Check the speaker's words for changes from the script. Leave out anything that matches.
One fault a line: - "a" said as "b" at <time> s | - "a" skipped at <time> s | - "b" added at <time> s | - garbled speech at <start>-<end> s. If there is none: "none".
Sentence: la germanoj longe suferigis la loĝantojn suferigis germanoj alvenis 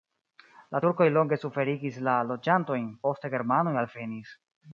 - "germanoj" said as "turkoj" at 0.8 s
- "suferigis" said as "poste" at 3.1 s